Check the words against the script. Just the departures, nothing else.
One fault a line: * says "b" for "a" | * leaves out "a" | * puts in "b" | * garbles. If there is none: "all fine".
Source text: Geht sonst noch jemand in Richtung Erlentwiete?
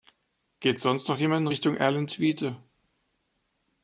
all fine